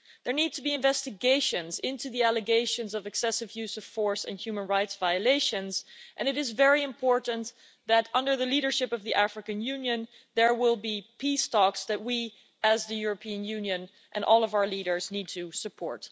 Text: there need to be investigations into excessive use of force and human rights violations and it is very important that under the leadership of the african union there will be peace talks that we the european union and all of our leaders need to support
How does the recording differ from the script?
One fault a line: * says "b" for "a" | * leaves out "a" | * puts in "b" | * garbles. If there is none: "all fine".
* puts in "the allegations of"
* puts in "as"